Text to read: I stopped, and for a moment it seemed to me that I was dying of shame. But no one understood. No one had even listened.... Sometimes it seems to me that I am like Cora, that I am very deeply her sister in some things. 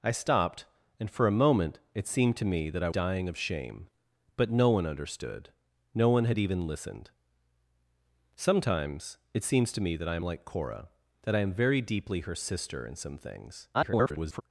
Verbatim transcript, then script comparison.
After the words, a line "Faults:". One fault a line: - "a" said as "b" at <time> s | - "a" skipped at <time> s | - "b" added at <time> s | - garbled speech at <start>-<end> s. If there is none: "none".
I stopped, and for a moment it seemed to me that I dying of shame. But no one understood. No one had even listened.... Sometimes it seems to me that I am like Cora, that I am very deeply her sister in some things. [garbled]
Faults:
- "was" skipped at 2.9 s
- garbled speech at 13.7-14.4 s